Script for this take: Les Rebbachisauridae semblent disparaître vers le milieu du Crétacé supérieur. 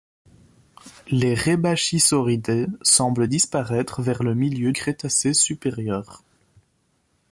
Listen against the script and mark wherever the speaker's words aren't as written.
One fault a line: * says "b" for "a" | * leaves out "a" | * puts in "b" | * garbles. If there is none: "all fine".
* leaves out "du"